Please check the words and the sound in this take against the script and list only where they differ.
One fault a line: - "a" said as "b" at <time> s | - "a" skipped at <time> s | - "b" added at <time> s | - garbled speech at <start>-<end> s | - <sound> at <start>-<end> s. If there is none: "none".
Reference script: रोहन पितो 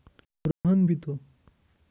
- dropout at 0.5-0.6 s